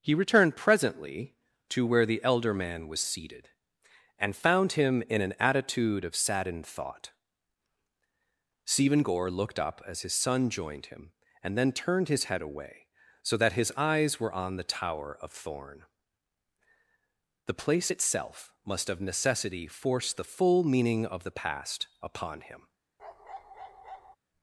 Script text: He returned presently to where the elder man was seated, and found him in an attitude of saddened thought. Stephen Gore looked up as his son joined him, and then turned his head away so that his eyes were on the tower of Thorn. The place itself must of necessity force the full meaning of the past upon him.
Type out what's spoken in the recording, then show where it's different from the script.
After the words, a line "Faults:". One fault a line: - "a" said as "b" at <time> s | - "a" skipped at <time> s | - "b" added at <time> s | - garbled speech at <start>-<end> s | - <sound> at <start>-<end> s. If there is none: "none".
He returned presently to where the elder man was seated, and found him in an attitude of saddened thought. Stephen Gore looked up as his son joined him, and then turned his head away so that his eyes were on the tower of Thorn. The place itself must of necessity force the full meaning of the past upon him.
Faults:
- bark at 23.0-24.2 s